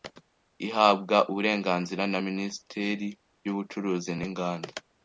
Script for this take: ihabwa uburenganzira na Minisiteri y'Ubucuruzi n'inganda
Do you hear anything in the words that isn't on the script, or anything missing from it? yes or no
no